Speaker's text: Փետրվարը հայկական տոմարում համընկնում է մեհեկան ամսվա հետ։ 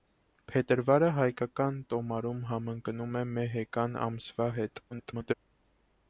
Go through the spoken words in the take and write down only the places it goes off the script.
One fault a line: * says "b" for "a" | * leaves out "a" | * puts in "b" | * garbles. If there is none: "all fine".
* garbles